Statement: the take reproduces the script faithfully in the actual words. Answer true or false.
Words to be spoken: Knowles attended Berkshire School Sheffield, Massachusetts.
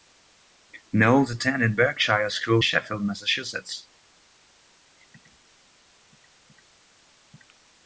true